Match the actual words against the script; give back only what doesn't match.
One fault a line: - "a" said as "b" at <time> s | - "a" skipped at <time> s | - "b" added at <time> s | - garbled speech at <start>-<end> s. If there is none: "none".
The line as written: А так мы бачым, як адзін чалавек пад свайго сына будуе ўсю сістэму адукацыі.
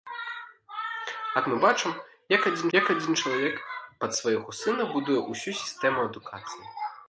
- "так" skipped at 1.4 s
- "як адзін" added at 2.8 s